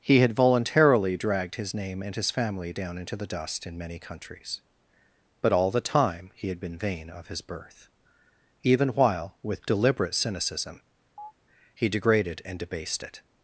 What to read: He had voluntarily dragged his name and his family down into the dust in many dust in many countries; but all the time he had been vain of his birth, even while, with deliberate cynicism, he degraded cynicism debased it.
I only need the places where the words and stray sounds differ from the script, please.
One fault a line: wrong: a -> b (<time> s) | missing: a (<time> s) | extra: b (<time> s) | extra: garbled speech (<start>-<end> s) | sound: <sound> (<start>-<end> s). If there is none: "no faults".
missing: dust in many (4.0 s)
sound: chirp (11.2-11.3 s)
wrong: cynicism -> and (12.4 s)